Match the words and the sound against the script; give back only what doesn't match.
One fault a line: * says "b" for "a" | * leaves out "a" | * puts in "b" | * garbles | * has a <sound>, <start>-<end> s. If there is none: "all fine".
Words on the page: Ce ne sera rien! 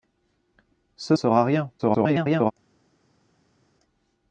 * leaves out "ne"
* garbles